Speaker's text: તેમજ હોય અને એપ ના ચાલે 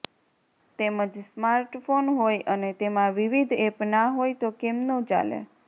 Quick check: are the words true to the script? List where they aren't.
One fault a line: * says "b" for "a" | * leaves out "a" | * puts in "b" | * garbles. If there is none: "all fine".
* puts in "સ્માર્ટફોન"
* puts in "તેમાં વિવિધ"
* puts in "હોય તો કેમનું"